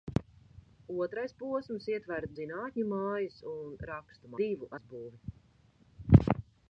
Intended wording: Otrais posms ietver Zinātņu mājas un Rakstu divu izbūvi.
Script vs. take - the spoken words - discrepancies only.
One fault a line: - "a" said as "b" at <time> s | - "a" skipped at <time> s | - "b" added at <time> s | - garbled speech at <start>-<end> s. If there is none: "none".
none